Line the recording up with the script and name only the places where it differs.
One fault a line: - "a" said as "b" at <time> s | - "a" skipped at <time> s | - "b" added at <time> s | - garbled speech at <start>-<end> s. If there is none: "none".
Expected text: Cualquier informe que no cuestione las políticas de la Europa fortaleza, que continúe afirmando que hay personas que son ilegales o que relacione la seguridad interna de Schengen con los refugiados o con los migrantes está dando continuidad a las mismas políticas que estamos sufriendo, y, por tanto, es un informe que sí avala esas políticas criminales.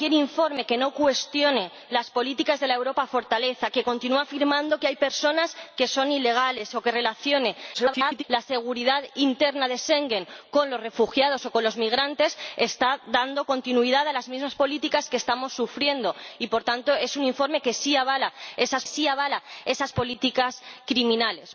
- garbled speech at 7.7-8.2 s
- "sí avala esas" added at 18.8 s